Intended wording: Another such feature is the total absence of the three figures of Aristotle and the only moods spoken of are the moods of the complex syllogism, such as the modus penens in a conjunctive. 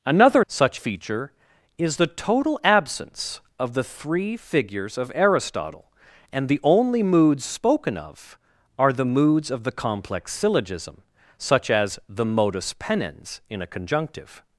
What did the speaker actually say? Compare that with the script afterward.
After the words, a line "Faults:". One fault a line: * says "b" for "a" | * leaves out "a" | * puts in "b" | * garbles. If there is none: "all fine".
Another such feature is the total absence of the three figures of Aristotle and the only moods spoken of are the moods of the complex syllogism, such as the modus penens in a conjunctive.
Faults:
all fine